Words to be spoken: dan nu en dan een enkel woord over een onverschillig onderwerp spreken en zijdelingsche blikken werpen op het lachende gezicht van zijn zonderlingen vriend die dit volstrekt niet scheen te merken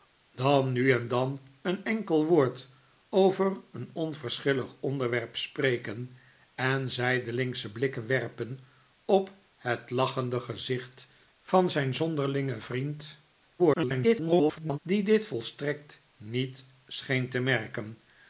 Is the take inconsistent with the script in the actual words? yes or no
yes